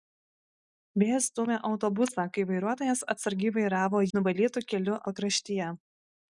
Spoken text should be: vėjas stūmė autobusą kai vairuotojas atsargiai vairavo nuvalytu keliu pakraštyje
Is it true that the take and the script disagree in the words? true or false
false